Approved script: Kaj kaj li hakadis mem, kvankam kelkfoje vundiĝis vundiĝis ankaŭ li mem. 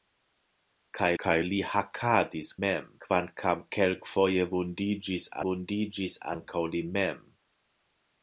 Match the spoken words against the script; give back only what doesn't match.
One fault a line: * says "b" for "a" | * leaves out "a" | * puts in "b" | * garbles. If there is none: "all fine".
all fine